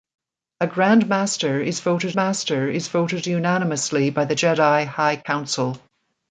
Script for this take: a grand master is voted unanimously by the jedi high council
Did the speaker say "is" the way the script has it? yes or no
yes